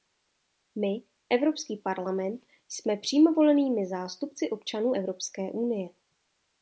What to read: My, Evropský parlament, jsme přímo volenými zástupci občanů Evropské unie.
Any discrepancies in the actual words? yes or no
no